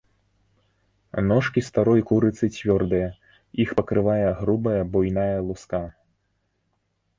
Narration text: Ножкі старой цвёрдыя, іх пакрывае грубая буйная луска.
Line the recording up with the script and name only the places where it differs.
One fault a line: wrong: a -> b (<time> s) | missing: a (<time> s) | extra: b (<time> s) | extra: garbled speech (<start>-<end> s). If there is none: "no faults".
extra: курыцы (2.1 s)